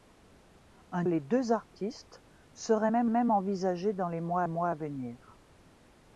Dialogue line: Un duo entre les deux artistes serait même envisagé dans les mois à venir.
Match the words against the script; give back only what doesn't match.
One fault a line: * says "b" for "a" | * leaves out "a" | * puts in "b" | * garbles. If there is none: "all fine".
* leaves out "duo entre"
* puts in "même"
* puts in "mois"